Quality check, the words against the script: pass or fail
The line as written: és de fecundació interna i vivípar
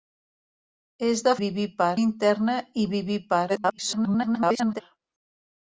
fail